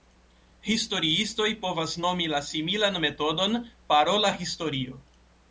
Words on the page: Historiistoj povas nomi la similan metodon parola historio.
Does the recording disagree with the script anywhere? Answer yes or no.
no